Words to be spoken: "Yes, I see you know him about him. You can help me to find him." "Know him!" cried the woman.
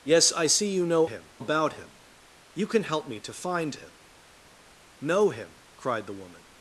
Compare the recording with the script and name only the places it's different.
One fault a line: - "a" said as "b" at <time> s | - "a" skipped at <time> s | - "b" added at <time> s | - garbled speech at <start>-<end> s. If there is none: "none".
none